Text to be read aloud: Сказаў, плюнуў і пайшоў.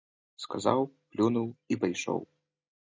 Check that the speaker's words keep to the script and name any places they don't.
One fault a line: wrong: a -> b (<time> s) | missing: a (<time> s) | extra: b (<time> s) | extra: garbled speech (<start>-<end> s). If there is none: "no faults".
no faults